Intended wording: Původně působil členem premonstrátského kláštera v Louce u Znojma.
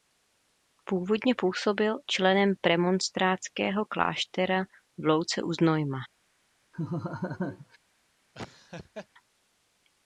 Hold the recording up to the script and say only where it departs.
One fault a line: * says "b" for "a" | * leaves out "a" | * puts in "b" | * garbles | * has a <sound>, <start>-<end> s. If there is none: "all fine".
* has a laugh, 6.7-7.8 s
* has a laugh, 8.3-9.1 s